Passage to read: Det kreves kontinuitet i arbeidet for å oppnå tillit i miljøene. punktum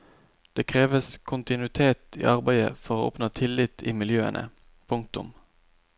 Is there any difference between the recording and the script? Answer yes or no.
no